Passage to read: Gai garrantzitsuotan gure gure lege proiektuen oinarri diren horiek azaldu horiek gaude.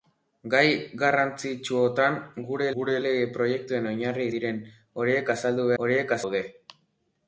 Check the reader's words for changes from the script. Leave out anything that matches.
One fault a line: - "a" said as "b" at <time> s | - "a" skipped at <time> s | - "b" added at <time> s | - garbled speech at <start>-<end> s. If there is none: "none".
none